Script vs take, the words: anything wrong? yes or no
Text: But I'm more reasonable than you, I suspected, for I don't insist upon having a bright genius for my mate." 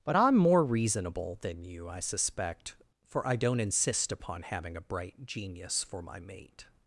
yes